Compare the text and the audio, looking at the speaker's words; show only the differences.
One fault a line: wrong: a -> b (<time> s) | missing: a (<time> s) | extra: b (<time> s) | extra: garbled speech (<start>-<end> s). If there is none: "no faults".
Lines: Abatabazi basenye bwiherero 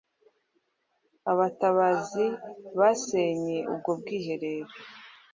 extra: ubwo (3.7 s)